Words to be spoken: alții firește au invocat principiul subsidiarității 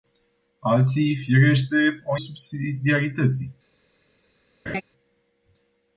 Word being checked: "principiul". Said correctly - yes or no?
no